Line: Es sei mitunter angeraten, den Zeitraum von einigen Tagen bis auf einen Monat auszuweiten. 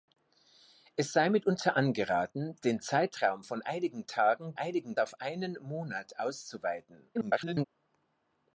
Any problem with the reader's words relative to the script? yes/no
yes